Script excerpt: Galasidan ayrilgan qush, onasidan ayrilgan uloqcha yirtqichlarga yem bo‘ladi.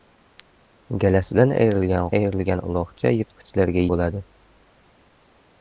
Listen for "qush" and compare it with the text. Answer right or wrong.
wrong